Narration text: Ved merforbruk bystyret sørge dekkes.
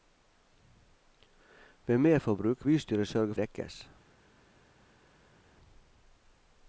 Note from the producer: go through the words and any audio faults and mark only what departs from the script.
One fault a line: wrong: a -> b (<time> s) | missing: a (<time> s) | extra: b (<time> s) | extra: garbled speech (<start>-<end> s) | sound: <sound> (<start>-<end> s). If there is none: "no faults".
no faults